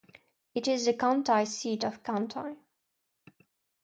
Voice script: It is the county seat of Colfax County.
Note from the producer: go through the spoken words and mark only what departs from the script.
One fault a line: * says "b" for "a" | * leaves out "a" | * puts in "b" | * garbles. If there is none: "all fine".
* leaves out "Colfax"